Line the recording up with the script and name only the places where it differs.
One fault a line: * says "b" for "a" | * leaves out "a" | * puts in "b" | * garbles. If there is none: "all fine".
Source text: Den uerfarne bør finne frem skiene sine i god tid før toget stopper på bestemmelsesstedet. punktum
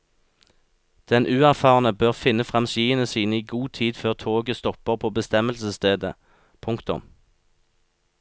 all fine